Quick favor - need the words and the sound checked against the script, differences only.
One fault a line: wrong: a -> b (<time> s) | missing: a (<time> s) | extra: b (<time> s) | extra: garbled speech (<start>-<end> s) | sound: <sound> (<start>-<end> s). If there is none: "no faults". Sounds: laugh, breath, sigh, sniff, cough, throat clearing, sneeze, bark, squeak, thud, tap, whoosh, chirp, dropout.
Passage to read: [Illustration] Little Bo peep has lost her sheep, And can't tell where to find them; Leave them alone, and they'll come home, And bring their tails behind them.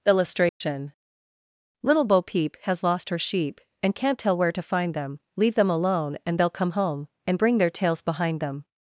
sound: dropout (0.5-0.6 s)